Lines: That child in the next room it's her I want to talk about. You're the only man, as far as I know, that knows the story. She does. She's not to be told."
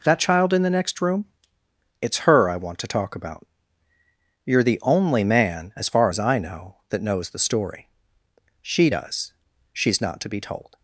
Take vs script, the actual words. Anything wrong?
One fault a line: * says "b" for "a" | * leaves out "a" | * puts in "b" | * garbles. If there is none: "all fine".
all fine